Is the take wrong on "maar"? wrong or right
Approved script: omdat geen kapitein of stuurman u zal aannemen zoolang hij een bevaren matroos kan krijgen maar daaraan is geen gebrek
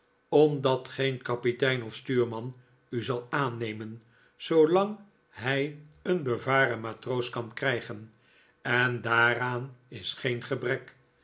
wrong